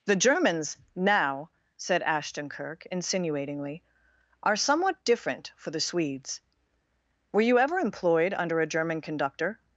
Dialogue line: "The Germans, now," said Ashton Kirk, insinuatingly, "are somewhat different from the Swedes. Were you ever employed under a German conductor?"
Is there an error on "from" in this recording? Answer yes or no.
yes